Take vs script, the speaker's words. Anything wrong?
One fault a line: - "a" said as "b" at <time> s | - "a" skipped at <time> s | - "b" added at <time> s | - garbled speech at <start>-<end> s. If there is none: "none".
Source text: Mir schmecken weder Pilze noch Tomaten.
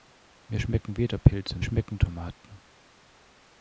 - "noch" said as "schmecken" at 1.6 s